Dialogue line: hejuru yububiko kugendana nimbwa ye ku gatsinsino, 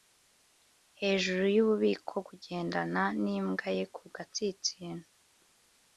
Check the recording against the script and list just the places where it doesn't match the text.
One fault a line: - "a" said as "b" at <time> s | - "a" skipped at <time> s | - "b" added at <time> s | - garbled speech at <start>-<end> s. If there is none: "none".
none